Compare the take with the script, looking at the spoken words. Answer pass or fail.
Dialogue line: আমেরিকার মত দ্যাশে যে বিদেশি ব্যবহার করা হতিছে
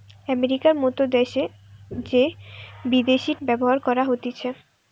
pass